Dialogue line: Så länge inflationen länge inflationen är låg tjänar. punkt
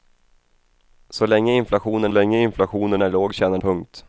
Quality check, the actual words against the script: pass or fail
pass